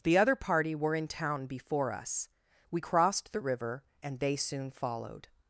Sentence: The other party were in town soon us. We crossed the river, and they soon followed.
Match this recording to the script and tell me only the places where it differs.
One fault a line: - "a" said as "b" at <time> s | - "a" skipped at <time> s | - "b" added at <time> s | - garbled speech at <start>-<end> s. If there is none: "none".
- "soon" said as "before" at 1.4 s